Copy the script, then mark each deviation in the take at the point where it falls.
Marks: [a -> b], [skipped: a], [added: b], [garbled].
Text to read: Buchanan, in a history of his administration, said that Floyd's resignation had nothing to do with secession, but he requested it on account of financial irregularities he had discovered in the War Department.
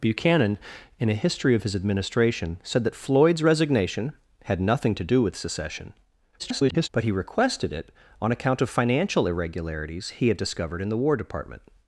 Buchanan, in a history of his administration, said that Floyd's resignation had nothing to do with secession, [garbled] but he requested it on account of financial irregularities he had discovered in the War Department.